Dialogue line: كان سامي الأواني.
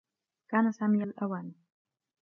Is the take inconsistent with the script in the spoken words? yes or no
no